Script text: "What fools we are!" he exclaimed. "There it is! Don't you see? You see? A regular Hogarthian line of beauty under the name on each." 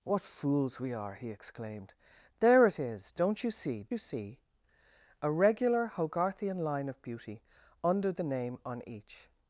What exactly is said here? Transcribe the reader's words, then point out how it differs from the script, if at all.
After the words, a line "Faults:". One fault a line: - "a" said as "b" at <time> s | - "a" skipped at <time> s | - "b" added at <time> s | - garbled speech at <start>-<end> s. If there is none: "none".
"What fools we are!" he exclaimed. "There it is! Don't you see? You see? A regular Hogarthian line of beauty under the name on each."
Faults:
none